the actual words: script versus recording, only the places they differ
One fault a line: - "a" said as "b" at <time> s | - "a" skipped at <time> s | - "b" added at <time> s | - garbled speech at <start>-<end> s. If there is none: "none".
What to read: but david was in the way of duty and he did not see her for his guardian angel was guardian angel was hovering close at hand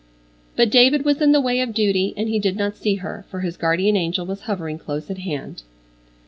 - "guardian angel was" skipped at 4.4 s